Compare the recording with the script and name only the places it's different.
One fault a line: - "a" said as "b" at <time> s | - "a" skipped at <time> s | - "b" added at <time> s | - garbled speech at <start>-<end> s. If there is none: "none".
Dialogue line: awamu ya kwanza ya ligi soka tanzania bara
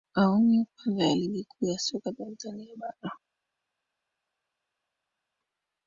- "kuu ya" added at 1.5 s